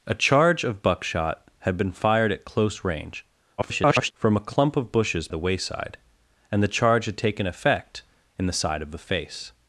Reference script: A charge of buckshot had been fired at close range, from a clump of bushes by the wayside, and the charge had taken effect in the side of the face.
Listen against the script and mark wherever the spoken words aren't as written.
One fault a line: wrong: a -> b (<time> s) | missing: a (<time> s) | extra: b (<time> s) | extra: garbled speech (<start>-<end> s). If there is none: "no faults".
extra: garbled speech (3.6-4.1 s)
missing: by (5.3 s)